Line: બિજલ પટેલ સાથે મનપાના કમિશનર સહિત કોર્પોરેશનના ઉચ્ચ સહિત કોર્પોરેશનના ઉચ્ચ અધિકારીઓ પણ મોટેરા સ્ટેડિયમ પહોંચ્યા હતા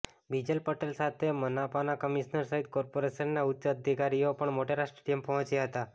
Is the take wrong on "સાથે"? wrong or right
right